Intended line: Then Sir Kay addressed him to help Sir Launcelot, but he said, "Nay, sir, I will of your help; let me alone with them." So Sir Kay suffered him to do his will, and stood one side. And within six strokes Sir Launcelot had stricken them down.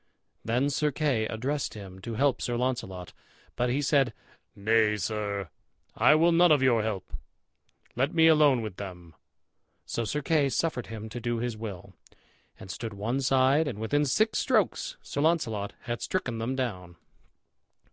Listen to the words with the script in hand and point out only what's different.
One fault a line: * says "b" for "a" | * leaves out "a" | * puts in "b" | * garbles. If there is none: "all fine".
* puts in "none"